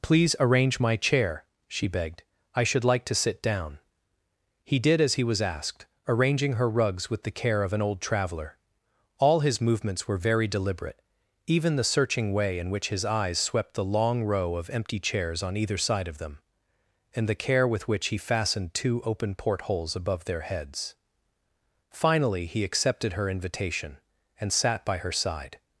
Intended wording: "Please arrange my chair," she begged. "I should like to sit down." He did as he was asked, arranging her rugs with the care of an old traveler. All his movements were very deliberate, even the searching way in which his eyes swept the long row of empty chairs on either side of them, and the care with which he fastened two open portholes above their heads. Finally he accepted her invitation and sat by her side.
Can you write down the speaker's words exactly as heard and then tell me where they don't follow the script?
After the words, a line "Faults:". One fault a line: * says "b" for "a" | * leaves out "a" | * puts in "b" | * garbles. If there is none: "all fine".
"Please arrange my chair," she begged. "I should like to sit down." He did as he was asked, arranging her rugs with the care of an old traveler. All his movements were very deliberate, even the searching way in which his eyes swept the long row of empty chairs on either side of them, and the care with which he fastened two open portholes above their heads. Finally he accepted her invitation and sat by her side.
Faults:
all fine